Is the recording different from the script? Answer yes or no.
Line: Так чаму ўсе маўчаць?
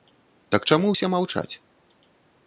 no